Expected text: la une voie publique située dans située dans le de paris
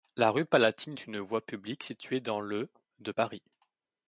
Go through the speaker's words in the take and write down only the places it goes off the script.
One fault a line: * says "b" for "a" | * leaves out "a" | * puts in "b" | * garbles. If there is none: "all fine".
* puts in "rue palatine est"
* leaves out "située dans"